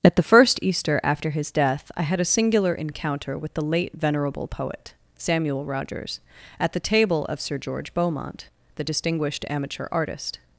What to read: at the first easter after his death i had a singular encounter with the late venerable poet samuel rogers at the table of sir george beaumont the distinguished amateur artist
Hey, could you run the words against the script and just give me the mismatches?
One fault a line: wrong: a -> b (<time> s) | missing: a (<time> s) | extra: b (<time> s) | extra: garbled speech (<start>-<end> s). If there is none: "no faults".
no faults